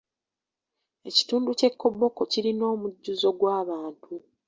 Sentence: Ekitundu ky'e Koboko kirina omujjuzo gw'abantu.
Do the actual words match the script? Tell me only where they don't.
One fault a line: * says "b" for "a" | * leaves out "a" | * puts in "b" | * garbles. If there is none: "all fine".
all fine